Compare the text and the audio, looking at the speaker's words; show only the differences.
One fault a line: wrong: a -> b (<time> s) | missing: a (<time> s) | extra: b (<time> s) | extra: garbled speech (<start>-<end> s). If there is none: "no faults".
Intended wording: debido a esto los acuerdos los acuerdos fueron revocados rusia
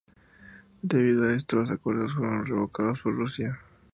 missing: los acuerdos (2.1 s)
extra: por (3.0 s)